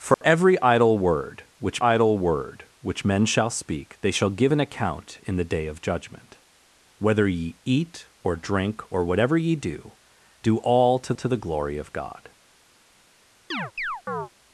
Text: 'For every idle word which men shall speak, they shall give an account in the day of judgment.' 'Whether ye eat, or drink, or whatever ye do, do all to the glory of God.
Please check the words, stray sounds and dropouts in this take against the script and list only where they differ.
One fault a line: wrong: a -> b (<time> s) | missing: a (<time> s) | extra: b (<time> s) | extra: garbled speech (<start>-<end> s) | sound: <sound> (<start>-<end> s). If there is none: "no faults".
sound: dropout (0.1-0.2 s)
extra: idle word which (1.8 s)
extra: to (11.1 s)
sound: chirp (13.5-14.3 s)